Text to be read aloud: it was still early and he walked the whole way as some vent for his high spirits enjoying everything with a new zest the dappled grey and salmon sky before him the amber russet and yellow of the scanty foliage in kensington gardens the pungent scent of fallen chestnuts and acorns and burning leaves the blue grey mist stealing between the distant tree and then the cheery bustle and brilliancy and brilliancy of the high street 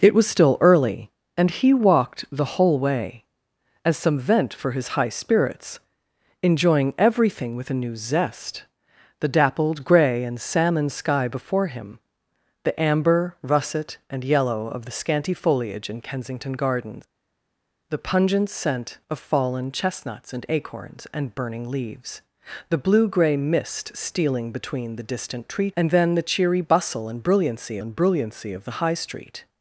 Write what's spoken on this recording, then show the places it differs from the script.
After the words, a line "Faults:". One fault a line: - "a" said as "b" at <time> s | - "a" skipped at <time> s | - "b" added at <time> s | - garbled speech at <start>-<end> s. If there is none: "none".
it was still early and he walked the whole way as some vent for his high spirits enjoying everything with a new zest the dappled grey and salmon sky before him the amber russet and yellow of the scanty foliage in kensington gardens the pungent scent of fallen chestnuts and acorns and burning leaves the blue grey mist stealing between the distant tree and then the cheery bustle and brilliancy and brilliancy of the high street
Faults:
none